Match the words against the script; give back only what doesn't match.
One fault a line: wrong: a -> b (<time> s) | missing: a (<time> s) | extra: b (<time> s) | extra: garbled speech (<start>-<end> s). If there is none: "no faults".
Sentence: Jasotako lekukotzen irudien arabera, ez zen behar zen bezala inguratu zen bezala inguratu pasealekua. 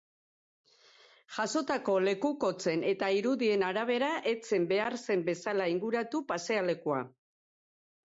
extra: eta (2.9 s)
missing: zen bezala inguratu (6.2 s)